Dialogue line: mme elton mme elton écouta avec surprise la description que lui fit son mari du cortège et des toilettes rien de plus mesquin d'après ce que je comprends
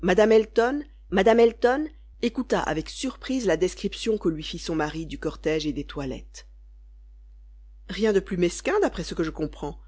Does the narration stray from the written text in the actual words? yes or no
no